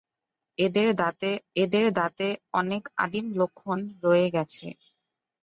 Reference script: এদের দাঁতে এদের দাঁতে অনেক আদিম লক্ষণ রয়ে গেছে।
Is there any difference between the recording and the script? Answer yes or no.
no